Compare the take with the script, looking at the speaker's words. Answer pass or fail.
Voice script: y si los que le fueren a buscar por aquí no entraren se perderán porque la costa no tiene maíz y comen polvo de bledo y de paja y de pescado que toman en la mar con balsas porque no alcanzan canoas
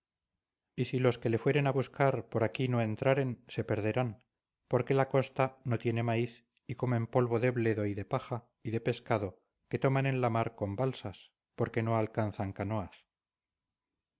pass